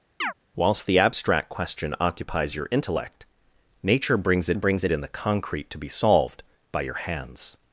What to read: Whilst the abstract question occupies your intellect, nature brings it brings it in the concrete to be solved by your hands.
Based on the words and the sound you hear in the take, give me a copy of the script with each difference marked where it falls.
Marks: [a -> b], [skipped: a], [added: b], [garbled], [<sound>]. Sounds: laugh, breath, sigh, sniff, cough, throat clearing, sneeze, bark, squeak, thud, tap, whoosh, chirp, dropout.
[chirp] Whilst the abstract question occupies your intellect, nature brings it brings it in the concrete to be solved by your hands.